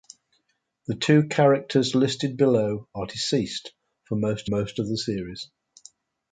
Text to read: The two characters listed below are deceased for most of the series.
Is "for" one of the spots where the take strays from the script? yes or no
no